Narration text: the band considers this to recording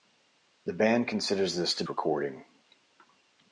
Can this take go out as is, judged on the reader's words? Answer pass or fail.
pass